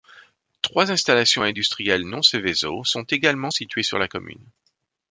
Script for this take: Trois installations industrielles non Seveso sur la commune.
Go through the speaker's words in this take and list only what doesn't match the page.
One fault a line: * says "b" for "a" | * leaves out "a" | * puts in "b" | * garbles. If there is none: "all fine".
* puts in "sont également situées"